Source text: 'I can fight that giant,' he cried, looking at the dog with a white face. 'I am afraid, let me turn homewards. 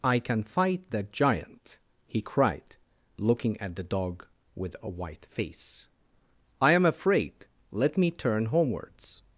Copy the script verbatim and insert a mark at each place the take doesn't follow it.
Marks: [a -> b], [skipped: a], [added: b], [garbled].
'I can fight that giant,' he cried, looking at the dog with a white face. 'I am afraid, let me turn homewards.